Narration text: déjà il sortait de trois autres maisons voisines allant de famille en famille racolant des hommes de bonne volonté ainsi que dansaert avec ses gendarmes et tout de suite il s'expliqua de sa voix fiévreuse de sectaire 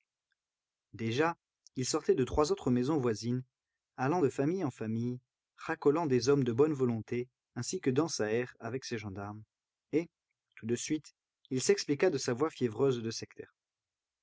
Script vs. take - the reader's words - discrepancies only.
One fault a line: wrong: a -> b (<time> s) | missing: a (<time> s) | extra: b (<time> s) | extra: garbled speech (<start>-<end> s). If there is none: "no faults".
no faults